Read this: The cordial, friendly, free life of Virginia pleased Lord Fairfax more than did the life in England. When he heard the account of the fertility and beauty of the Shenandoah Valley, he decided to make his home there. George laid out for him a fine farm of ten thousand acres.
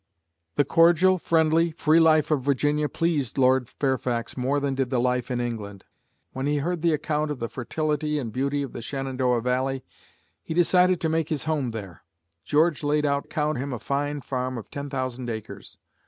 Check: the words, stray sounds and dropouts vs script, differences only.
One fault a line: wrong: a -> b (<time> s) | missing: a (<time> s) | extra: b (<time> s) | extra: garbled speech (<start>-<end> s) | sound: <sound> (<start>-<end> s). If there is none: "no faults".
wrong: for -> account (13.2 s)